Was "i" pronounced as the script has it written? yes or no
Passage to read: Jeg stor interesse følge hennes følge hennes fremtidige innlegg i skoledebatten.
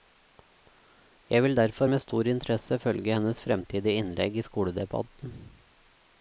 yes